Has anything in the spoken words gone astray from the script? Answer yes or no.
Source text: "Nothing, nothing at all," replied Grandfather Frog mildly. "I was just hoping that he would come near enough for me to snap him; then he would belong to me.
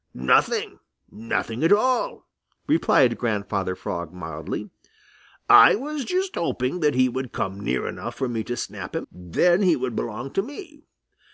no